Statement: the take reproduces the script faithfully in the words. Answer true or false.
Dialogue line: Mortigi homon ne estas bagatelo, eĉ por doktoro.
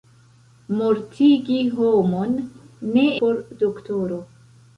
false